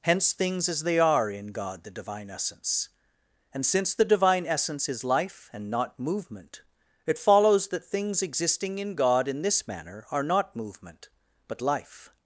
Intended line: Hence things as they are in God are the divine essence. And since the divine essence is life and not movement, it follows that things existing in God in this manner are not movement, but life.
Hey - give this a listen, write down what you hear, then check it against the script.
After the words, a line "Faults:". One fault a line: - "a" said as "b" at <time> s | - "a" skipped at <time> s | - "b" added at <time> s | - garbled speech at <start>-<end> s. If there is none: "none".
Hence things as they are in God the divine essence. And since the divine essence is life and not movement, it follows that things existing in God in this manner are not movement, but life.
Faults:
- "are" skipped at 1.8 s